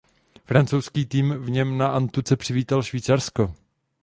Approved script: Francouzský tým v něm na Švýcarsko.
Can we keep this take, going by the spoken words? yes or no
no